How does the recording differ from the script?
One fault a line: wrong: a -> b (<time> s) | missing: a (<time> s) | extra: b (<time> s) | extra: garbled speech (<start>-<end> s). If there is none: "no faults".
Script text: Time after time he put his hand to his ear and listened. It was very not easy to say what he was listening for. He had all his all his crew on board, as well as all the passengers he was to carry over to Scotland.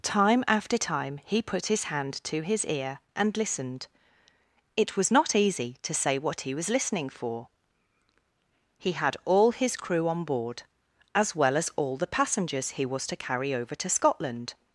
missing: very (5.1 s)
missing: all his (9.8 s)